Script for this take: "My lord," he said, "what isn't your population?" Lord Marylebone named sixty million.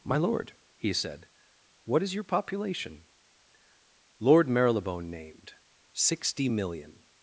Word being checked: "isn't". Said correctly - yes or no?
no